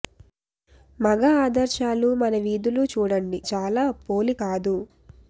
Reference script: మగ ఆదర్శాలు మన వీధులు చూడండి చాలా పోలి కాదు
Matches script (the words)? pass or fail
pass